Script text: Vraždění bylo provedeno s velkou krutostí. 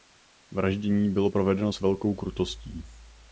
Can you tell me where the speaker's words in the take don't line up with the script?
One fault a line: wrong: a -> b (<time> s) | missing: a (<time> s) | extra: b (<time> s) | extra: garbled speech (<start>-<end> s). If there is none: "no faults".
no faults